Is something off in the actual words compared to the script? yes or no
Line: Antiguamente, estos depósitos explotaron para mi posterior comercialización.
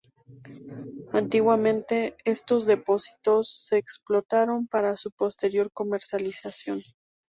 yes